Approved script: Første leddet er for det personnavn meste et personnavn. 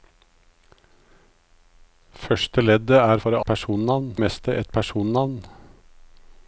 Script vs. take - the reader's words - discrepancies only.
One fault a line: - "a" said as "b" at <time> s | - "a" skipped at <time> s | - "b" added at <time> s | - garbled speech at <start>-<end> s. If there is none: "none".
none